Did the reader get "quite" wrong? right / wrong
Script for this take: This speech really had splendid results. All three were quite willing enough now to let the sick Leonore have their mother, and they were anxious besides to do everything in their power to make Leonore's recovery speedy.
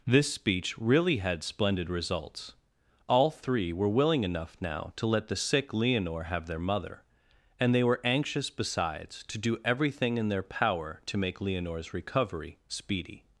wrong